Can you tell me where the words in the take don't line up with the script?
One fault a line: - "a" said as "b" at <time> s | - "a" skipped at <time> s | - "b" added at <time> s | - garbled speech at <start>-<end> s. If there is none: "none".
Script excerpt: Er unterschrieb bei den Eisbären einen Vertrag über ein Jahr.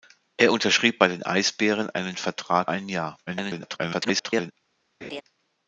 - "über" skipped at 2.7 s
- garbled speech at 3.3-4.5 s